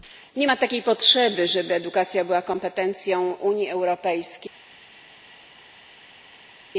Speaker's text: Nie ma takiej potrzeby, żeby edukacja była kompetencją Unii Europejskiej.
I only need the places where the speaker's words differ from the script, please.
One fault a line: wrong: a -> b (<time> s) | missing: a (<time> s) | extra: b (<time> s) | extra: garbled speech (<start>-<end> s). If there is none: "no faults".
no faults